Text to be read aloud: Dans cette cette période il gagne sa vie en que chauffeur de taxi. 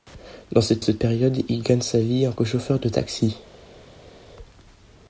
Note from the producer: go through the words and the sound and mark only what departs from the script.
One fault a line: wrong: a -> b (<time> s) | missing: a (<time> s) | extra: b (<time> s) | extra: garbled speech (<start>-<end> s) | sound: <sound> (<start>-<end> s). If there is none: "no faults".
no faults